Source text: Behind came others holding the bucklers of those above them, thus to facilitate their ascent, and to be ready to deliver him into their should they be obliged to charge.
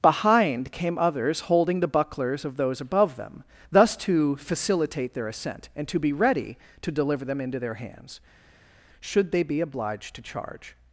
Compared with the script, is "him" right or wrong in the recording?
wrong